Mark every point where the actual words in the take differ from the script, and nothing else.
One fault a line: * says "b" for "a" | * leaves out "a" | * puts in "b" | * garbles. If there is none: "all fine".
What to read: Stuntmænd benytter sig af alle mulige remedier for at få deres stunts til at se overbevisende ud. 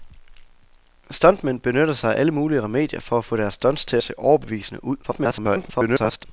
* leaves out "at"
* garbles